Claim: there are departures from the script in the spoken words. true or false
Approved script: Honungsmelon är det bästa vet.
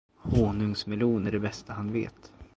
true